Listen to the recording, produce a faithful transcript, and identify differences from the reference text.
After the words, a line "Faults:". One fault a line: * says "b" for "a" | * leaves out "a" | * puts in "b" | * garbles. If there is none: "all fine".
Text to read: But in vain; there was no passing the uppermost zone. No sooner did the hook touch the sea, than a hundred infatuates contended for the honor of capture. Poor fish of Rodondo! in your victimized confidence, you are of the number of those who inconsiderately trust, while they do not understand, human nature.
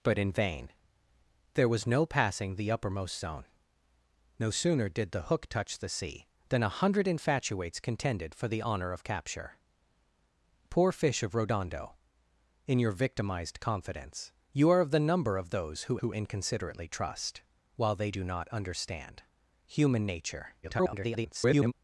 But in vain; there was no passing the uppermost zone. No sooner did the hook touch the sea, than a hundred infatuates contended for the honor of capture. Poor fish of Rodondo! in your victimized confidence, you are of the number of those who who inconsiderately trust, while they do not understand, human nature. [garbled]
Faults:
* puts in "who"
* garbles